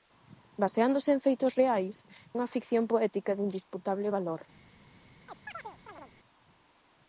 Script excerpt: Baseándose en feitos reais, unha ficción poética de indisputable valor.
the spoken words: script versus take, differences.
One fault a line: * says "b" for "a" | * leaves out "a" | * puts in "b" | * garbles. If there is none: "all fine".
all fine